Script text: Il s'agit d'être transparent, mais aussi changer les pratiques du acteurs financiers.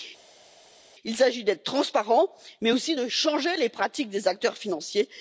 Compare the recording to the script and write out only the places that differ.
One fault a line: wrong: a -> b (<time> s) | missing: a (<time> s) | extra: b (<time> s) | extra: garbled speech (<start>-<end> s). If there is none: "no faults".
extra: de (2.9 s)
wrong: du -> des (4.1 s)